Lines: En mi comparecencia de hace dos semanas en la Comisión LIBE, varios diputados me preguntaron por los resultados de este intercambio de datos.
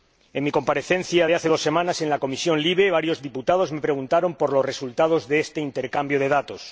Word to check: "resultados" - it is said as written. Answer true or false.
true